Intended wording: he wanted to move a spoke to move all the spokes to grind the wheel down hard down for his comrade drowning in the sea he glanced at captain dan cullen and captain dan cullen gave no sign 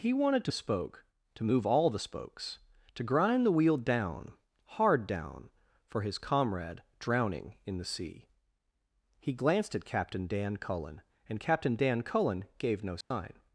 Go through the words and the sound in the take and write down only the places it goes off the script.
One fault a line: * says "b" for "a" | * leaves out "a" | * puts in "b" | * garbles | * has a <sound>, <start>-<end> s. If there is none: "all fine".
* leaves out "move"
* has a dropout, 13.0-13.1 s